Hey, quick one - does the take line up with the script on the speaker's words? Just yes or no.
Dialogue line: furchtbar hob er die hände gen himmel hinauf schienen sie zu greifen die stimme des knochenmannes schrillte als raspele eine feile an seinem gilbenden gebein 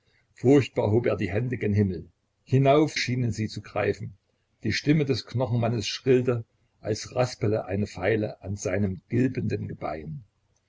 yes